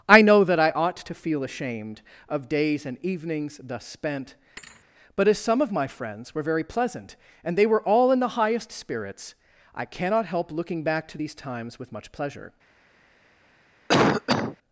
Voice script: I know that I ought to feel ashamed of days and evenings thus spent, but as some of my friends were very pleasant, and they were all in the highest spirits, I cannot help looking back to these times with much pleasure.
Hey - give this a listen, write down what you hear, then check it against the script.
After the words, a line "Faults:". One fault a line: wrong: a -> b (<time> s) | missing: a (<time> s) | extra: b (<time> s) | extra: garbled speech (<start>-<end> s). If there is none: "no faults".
I know that I ought to feel ashamed of days and evenings thus spent, but as some of my friends were very pleasant, and they were all in the highest spirits, I cannot help looking back to these times with much pleasure.
Faults:
no faults